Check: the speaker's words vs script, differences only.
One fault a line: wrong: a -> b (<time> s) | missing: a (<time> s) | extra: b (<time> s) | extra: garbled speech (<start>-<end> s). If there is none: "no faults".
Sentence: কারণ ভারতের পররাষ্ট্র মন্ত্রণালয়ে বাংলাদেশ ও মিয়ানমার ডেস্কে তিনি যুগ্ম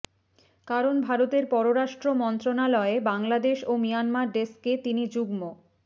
no faults